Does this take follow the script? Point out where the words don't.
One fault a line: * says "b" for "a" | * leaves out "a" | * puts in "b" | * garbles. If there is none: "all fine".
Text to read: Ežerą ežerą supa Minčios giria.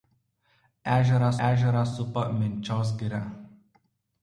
all fine